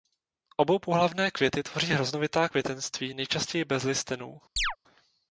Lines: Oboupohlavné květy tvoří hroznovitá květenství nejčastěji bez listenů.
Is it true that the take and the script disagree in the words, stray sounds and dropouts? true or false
true